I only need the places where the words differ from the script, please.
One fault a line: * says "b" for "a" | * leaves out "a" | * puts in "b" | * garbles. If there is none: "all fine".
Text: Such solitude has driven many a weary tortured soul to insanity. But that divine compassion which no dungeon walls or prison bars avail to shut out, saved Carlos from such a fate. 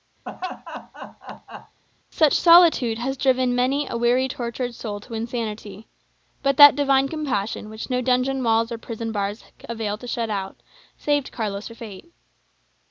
* leaves out "from such"